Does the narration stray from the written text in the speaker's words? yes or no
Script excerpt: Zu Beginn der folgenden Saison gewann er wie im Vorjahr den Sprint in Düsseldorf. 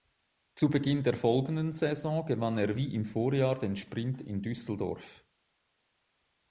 no